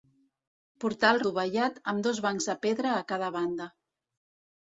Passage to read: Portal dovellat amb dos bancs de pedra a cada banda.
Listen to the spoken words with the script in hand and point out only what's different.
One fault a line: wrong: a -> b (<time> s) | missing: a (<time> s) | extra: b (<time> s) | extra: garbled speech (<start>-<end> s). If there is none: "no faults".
no faults